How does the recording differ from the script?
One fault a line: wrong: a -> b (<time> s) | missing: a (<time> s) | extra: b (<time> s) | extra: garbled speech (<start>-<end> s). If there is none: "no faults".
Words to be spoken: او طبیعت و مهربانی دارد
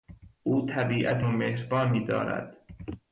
no faults